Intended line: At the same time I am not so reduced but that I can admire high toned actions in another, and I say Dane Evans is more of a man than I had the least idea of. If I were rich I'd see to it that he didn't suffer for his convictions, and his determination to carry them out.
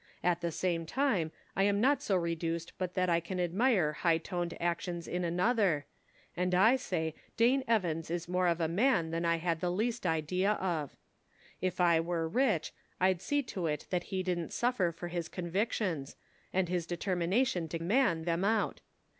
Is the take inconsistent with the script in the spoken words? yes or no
yes